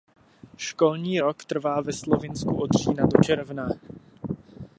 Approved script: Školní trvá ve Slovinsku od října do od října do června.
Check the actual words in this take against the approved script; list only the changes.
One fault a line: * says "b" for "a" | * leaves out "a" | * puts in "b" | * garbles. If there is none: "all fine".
* puts in "rok"
* leaves out "od října do"